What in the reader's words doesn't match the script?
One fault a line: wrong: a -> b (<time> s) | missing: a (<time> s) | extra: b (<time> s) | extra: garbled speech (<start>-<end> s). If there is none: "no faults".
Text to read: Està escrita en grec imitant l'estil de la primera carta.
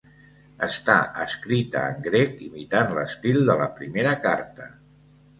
no faults